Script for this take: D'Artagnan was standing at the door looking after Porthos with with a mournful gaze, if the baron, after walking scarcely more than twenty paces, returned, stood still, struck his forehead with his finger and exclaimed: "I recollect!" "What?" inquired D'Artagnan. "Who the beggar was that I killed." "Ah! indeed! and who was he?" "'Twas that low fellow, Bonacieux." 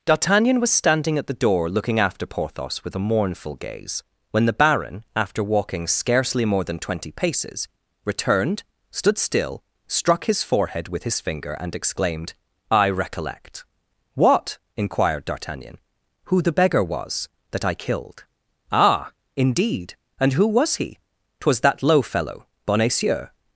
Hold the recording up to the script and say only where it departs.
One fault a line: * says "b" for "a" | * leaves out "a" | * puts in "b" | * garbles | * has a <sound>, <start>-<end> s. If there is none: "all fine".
* leaves out "with"
* says "when" for "if"